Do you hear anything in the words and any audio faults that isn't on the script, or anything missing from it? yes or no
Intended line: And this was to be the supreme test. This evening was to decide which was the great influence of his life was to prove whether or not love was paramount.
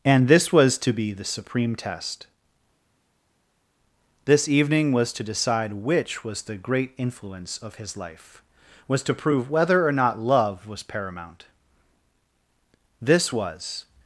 yes